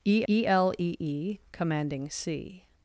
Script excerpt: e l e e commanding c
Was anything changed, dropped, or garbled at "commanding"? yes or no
no